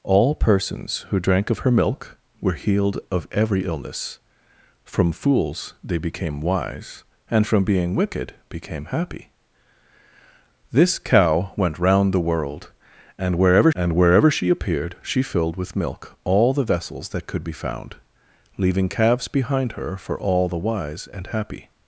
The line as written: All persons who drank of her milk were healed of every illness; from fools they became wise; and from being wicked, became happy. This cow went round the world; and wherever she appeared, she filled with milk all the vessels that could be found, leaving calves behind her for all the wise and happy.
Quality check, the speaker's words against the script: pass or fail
fail